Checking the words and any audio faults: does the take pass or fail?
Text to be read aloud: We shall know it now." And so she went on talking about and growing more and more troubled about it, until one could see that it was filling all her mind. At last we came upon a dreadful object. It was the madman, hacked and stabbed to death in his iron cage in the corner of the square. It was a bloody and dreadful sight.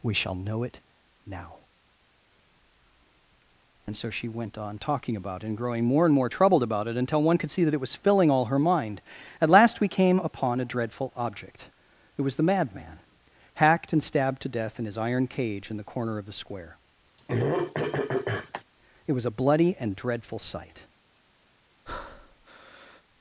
fail